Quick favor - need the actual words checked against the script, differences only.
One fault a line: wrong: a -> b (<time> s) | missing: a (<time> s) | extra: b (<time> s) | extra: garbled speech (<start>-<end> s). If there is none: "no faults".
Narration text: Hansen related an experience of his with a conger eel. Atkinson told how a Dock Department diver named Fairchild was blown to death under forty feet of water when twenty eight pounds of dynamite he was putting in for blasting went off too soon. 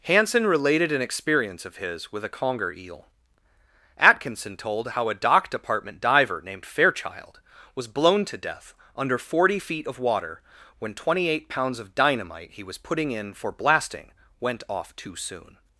no faults